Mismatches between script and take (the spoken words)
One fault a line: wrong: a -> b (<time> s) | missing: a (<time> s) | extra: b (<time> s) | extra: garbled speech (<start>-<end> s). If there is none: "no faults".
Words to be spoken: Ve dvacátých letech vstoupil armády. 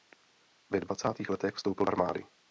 no faults